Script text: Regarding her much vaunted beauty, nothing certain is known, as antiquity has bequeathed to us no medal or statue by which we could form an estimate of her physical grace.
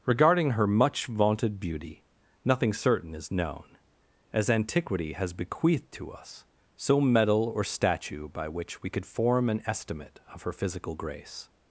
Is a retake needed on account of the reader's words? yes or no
yes